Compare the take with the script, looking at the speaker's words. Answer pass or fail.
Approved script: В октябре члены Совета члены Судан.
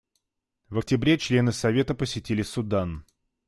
fail